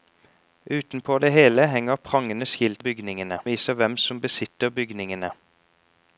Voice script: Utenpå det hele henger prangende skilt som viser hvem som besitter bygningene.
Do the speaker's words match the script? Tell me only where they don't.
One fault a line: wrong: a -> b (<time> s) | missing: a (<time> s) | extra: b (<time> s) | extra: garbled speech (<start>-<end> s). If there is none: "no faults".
wrong: som -> bygningene (2.8 s)